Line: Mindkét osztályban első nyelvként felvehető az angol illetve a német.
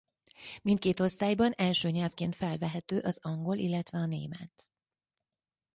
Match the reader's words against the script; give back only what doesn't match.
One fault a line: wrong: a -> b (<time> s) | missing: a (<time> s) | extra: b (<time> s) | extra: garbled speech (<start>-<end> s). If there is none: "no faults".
no faults